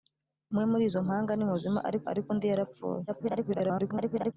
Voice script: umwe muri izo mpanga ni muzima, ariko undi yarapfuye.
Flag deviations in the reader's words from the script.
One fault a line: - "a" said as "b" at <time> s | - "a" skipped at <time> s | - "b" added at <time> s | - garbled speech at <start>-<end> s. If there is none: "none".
- "ariko" added at 2.1 s
- garbled speech at 3.1-4.3 s